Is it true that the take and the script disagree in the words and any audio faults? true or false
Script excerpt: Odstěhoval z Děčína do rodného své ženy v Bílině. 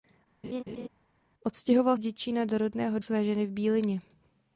true